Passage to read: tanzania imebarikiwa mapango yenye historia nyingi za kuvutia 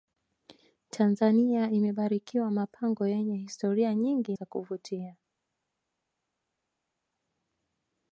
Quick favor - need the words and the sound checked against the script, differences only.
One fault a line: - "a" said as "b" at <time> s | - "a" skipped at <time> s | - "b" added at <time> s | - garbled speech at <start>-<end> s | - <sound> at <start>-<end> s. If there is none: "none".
none